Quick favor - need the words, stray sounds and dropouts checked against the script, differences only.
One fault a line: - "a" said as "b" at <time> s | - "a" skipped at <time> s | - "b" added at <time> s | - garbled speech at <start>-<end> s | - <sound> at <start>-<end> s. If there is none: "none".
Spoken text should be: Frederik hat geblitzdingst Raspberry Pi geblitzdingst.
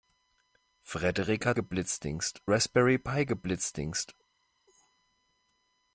none